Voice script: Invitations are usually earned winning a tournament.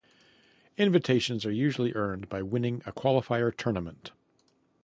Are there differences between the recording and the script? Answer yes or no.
yes